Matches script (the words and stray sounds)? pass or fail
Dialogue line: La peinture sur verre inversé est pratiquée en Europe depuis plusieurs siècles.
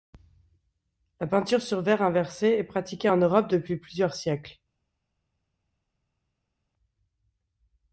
pass